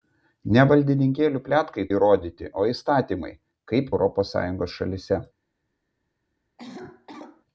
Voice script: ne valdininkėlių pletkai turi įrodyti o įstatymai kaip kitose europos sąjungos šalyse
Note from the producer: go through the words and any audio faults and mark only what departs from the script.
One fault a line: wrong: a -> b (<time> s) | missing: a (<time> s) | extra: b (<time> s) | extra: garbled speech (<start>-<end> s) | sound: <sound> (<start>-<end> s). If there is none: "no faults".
missing: turi (1.9 s)
missing: kitose (3.9 s)
sound: cough (6.6-7.5 s)